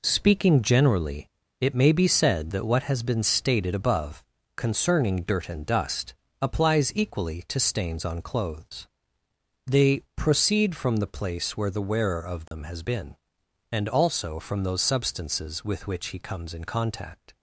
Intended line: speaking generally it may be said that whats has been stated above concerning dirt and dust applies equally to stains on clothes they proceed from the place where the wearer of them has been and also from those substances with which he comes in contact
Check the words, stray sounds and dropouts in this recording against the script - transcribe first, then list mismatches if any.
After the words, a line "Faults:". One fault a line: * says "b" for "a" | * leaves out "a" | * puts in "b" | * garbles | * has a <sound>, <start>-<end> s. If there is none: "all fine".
speaking generally it may be said that what has been stated above concerning dirt and dust applies equally to stains on clothes they proceed from the place where the wearer of them has been and also from those substances with which he comes in contact
Faults:
* says "what" for "whats"
* has a dropout, 12.5-12.5 s